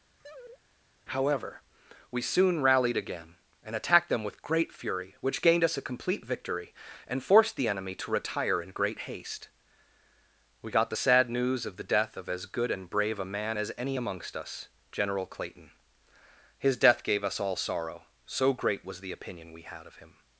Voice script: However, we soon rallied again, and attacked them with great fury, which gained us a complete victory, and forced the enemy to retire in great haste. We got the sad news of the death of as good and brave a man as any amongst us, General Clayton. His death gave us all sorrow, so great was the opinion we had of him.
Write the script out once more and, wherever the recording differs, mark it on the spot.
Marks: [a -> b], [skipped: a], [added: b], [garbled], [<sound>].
[laugh] However, we soon rallied again, and attacked them with great fury, which gained us a complete victory, and forced the enemy to retire in great haste. We got the sad news of the death of as good and brave a man as any amongst us, General Clayton. His death gave us all sorrow, so great was the opinion we had of him.